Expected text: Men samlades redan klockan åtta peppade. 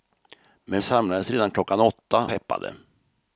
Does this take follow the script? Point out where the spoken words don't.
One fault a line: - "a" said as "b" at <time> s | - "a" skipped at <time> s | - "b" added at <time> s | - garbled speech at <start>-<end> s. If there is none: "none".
none